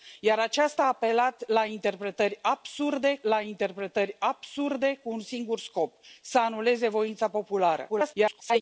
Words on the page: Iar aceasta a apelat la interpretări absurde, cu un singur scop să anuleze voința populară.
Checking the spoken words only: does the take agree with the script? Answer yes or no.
no